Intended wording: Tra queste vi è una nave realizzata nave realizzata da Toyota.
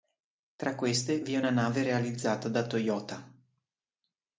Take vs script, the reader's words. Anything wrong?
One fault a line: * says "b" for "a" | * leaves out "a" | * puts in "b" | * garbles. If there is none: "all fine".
* leaves out "nave realizzata"